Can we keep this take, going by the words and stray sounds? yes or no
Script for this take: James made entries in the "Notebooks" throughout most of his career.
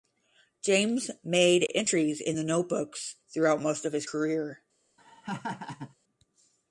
no